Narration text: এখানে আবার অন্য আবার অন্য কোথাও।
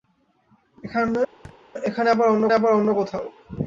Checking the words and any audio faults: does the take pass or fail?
fail